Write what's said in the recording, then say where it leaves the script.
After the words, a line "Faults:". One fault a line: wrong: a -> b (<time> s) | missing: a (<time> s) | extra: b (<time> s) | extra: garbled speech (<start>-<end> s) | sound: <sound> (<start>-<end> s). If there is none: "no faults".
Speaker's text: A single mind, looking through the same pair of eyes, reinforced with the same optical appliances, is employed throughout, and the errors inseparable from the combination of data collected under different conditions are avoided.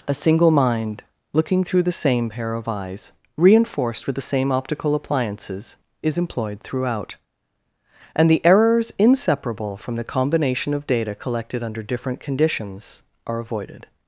A single mind, looking through the same pair of eyes, reinforced with the same optical appliances, is employed throughout, and the errors inseparable from the combination of data collected under different conditions are avoided.
Faults:
no faults